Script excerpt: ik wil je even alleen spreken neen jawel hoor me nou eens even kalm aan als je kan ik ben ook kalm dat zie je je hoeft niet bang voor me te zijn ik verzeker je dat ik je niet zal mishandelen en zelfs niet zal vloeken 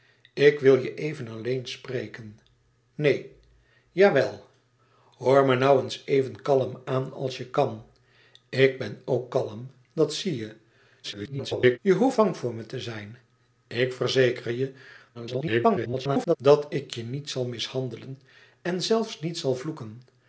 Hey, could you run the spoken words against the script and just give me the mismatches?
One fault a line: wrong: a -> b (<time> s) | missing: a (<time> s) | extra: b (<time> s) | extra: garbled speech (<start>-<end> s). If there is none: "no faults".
extra: garbled speech (11.0-11.8 s)
missing: niet (12.2 s)
extra: garbled speech (15.1-16.4 s)